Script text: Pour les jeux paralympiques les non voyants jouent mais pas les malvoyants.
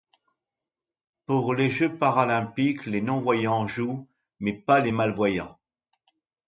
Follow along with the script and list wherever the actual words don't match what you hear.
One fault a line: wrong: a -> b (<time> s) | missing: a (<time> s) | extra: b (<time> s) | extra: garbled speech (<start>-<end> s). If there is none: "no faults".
no faults